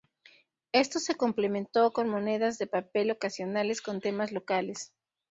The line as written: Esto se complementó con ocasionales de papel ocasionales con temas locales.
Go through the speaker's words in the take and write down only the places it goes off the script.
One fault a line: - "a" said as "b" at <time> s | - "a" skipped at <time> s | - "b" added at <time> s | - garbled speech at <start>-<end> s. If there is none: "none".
- "ocasionales" said as "monedas" at 2.1 s